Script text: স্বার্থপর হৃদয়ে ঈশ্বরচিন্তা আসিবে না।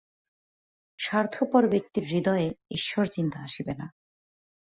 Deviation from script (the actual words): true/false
true